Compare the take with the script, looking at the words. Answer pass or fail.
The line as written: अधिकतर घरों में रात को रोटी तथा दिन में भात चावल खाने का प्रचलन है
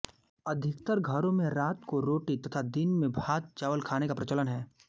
pass